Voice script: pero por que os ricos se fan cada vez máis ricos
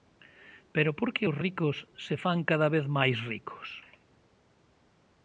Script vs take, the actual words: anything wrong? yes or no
no